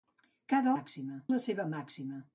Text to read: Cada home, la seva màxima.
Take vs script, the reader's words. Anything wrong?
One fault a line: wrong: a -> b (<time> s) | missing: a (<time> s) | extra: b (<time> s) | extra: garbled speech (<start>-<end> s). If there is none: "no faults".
wrong: home -> màxima (0.7 s)